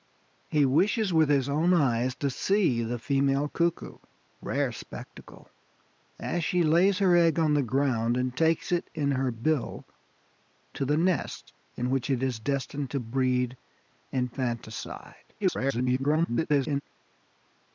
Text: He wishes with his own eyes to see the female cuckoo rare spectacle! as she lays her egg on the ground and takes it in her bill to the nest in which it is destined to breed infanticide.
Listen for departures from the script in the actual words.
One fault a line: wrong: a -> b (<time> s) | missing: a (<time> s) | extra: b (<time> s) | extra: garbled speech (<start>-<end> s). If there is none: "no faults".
extra: garbled speech (15.4-16.8 s)